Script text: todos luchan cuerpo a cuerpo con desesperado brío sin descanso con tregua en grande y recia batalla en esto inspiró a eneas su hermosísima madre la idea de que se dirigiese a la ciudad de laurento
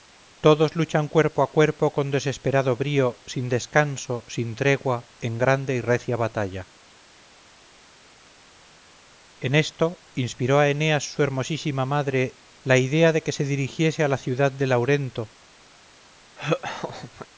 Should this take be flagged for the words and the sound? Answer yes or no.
yes